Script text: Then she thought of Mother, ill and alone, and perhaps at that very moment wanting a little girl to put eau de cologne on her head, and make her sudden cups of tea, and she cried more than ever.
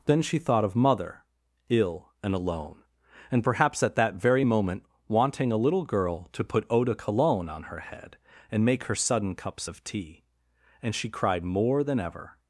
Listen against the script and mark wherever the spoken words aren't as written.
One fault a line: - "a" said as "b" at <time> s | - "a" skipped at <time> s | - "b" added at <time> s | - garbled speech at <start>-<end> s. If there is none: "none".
none